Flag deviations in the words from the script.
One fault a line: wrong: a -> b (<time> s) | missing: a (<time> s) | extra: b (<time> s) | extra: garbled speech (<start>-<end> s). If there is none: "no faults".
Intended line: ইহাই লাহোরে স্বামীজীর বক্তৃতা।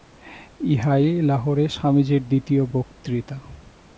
extra: দ্বিতীয় (2.3 s)